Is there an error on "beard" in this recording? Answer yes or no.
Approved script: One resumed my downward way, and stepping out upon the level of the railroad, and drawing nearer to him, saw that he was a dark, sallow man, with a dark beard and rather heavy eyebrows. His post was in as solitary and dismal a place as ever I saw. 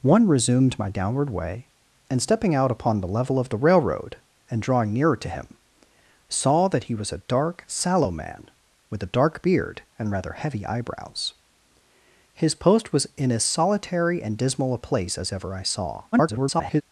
no